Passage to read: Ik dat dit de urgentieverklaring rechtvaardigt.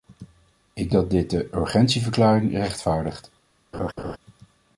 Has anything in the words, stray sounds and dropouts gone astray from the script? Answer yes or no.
yes